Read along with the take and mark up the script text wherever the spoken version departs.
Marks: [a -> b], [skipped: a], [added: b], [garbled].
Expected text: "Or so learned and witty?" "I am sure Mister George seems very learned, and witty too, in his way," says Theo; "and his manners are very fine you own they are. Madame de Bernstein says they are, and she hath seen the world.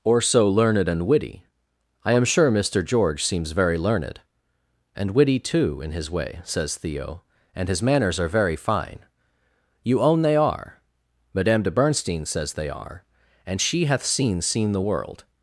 "Or so learned and witty?" "I am sure Mister George seems very learned, and witty too, in his way," says Theo; "and his manners are very fine you own they are. Madame de Bernstein says they are, and she hath seen [added: seen] the world.